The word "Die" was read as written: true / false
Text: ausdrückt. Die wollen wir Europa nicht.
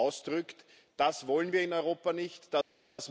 false